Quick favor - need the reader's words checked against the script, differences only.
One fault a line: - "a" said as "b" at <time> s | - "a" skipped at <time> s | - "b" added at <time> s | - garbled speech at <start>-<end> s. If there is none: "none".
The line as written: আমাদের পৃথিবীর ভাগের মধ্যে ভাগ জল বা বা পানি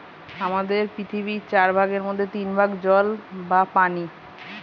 - "চার" added at 1.5 s
- "তিন" added at 2.3 s
- "বা" skipped at 3.6 s